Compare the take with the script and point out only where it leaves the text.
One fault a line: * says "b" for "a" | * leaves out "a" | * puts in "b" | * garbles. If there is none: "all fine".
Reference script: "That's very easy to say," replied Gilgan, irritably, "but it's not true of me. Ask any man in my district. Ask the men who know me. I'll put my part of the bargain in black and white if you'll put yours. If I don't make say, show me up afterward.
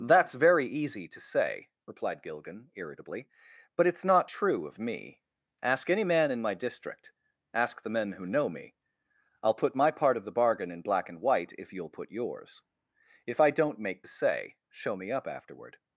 all fine